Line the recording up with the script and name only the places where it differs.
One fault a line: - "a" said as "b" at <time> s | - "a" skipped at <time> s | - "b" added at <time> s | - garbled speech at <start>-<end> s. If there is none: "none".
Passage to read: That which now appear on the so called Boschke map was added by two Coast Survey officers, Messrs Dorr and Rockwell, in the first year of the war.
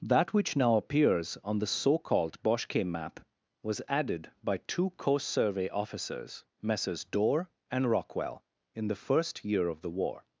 - "appear" said as "appears" at 0.8 s